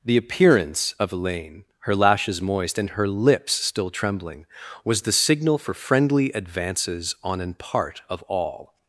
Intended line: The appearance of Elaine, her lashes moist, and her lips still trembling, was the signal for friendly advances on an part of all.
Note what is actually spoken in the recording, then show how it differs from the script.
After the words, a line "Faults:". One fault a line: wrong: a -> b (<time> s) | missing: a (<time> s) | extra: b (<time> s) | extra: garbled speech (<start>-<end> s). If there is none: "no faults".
The appearance of Elaine, her lashes moist, and her lips still trembling, was the signal for friendly advances on an part of all.
Faults:
no faults